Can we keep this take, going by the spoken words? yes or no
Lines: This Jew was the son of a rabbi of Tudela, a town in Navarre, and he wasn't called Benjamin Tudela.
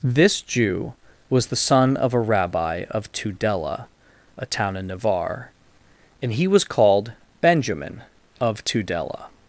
no